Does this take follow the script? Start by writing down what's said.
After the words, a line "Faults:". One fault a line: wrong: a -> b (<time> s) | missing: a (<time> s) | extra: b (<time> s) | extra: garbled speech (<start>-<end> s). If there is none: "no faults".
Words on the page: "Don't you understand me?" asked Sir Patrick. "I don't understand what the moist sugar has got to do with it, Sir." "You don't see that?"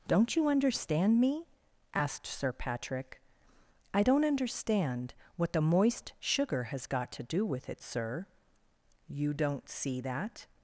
"Don't you understand me?" asked Sir Patrick. "I don't understand what the moist sugar has got to do with it, Sir." "You don't see that?"
Faults:
no faults